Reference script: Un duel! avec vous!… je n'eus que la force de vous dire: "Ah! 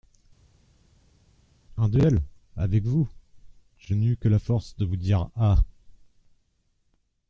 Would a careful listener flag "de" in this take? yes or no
no